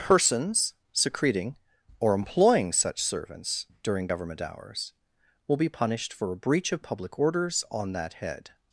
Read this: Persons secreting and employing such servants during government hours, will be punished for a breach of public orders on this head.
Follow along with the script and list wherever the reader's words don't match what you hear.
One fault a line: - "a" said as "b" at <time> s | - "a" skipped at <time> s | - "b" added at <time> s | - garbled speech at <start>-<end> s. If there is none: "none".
- "and" said as "or" at 2.0 s
- "this" said as "that" at 7.9 s